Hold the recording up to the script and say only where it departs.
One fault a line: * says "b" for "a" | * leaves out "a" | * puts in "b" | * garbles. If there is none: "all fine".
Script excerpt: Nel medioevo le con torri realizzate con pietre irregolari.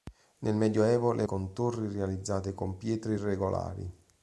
all fine